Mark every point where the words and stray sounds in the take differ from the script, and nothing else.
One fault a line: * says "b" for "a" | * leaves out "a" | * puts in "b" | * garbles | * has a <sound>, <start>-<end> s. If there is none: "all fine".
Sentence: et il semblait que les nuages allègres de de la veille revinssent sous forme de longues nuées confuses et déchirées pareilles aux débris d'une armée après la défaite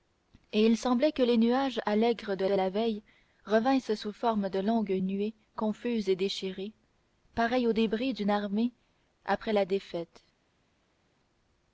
all fine